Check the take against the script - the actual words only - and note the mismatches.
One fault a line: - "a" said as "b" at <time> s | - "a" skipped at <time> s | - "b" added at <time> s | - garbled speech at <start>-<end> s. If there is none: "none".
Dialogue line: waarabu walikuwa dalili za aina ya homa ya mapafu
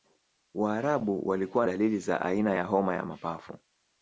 none